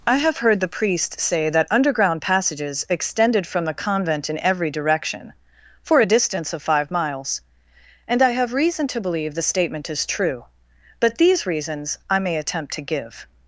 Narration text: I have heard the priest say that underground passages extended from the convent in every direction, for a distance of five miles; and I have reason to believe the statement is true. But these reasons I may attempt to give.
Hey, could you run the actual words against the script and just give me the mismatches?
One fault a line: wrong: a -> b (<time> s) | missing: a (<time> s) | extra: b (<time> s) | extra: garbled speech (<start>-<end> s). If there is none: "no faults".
no faults